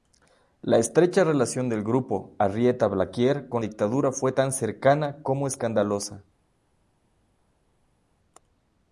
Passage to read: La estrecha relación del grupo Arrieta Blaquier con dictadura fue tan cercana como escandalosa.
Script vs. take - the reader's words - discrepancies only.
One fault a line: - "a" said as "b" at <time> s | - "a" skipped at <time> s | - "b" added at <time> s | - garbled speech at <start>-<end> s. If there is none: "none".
none